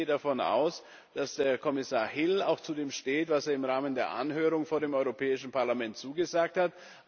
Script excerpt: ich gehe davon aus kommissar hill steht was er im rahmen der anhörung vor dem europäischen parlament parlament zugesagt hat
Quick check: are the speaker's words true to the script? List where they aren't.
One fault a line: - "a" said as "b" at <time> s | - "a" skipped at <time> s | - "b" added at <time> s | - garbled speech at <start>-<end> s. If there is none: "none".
- "dass" added at 1.1 s
- "auch zu dem" added at 2.4 s
- "parlament" skipped at 6.0 s